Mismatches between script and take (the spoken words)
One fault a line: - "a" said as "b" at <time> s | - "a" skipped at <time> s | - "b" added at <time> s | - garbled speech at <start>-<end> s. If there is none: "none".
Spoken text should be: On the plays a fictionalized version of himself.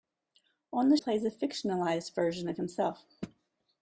none